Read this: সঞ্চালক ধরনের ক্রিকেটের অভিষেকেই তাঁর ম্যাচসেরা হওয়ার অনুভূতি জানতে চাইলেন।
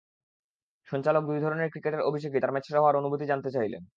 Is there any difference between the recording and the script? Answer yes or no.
yes